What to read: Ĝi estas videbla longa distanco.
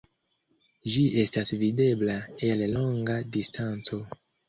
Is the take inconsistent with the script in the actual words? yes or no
yes